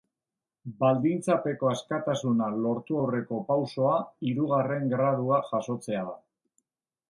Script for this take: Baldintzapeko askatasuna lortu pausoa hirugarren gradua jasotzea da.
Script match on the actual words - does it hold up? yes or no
no